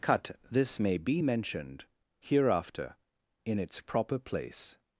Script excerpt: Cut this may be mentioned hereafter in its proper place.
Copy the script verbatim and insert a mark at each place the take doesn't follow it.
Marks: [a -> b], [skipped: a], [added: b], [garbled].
Cut this may be mentioned hereafter in its proper place.